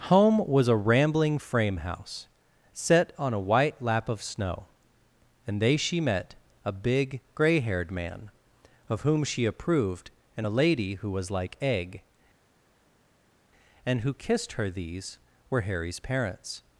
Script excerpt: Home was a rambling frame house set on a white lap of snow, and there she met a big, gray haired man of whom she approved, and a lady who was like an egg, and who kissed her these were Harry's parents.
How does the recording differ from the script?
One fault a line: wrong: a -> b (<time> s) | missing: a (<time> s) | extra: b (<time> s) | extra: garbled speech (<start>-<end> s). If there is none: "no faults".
wrong: there -> they (5.6 s)
missing: an (11.6 s)